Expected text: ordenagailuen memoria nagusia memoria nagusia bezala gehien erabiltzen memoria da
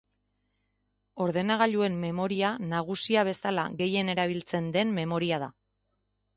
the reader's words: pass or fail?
fail